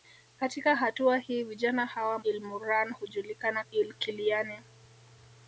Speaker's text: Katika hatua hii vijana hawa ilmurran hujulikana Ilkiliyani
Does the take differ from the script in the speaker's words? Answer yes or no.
no